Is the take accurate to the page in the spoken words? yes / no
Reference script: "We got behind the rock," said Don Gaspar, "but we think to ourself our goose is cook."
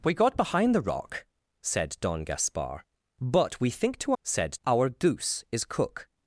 no